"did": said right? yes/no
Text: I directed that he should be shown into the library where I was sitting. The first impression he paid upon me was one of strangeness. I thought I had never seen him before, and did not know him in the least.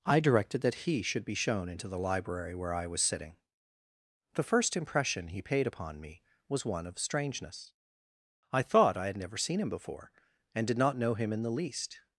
yes